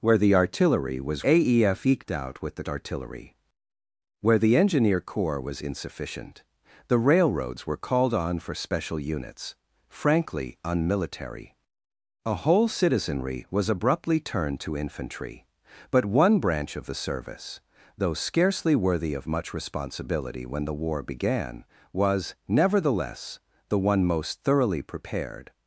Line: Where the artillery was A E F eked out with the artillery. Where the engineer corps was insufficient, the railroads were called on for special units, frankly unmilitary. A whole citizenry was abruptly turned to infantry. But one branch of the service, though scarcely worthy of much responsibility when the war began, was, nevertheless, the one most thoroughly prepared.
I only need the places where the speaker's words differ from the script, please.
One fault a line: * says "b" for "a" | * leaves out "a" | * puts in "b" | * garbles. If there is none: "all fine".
all fine